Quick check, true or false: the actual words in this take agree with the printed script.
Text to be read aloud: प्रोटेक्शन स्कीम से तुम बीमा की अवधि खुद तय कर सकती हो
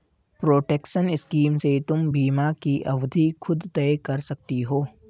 true